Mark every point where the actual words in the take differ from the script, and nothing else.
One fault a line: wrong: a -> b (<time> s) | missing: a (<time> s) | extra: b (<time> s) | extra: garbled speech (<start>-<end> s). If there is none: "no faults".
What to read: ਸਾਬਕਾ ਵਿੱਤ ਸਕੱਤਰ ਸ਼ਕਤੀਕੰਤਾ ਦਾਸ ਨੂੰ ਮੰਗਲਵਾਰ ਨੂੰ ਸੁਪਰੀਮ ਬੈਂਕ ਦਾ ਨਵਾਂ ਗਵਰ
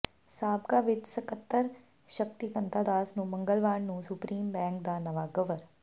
no faults